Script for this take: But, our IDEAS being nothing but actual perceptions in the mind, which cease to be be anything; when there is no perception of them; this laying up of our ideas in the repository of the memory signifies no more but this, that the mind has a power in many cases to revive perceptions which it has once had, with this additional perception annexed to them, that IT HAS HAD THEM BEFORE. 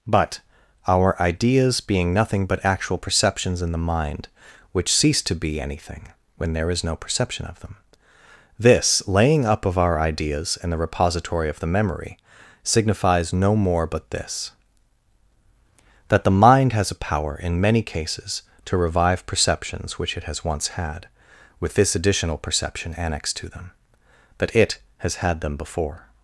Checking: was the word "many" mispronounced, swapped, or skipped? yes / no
no